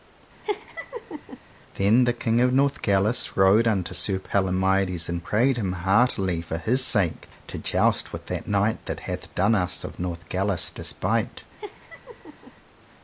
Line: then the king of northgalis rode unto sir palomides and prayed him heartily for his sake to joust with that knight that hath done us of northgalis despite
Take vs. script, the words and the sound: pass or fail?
fail